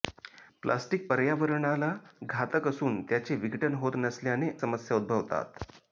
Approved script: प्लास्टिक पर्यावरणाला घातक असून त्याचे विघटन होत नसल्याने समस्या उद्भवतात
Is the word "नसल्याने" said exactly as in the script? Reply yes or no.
yes